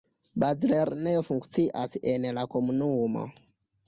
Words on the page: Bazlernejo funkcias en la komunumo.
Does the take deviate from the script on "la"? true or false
false